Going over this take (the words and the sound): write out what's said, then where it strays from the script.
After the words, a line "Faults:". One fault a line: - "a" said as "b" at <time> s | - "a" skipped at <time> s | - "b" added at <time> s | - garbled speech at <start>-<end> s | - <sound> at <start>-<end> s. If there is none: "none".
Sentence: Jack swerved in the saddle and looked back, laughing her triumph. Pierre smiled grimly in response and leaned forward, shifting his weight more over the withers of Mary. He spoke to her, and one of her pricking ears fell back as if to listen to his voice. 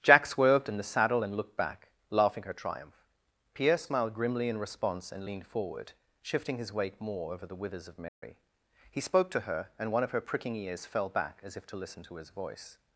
Jack swerved in the saddle and looked back, laughing her triumph. Pierre smiled grimly in response and leaned forward, shifting his weight more over the withers of Mary. He spoke to her, and one of her pricking ears fell back as if to listen to his voice.
Faults:
- dropout at 8.1-8.2 s